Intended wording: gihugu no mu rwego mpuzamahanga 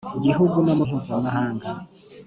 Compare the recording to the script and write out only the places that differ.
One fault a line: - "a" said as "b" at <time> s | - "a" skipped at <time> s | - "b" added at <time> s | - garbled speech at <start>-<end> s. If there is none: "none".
- "rwego" skipped at 0.8 s